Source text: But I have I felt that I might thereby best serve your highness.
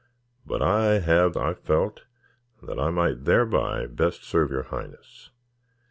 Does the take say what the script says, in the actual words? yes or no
yes